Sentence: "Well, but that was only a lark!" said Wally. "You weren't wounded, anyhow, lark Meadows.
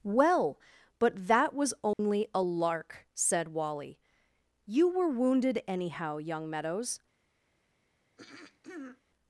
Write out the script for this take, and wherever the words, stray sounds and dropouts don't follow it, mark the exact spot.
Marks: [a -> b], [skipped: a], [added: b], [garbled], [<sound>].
"Well, but that was only [dropout] a lark!" said Wally. "You [weren't -> were] wounded, anyhow, [lark -> young] Meadows. [throat clearing]